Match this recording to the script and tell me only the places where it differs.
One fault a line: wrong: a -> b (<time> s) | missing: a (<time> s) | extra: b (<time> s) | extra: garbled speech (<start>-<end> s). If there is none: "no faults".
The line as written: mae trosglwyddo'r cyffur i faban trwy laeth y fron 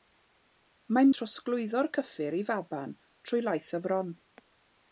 no faults